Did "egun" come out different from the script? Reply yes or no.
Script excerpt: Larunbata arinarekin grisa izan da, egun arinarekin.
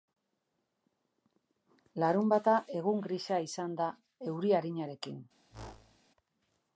yes